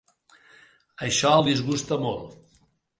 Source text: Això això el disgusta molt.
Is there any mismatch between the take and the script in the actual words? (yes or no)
yes